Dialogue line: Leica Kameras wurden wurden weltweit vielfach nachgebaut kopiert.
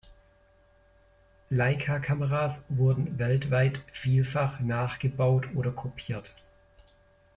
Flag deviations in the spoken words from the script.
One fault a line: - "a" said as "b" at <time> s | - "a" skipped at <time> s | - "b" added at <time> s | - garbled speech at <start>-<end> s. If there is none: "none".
- "wurden" skipped at 3.2 s
- "oder" added at 5.5 s